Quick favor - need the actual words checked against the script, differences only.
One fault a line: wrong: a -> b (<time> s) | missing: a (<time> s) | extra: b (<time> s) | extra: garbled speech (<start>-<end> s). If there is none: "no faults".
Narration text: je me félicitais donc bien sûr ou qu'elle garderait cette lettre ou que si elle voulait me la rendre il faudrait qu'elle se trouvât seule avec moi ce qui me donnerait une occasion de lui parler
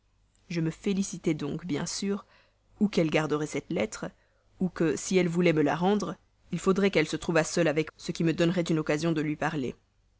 missing: moi (7.9 s)